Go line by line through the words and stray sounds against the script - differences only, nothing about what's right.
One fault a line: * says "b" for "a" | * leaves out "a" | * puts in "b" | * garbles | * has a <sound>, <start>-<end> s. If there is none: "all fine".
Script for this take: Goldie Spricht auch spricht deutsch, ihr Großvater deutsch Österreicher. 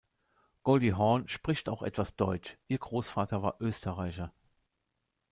* puts in "Hawn"
* says "etwas" for "spricht"
* says "war" for "deutsch"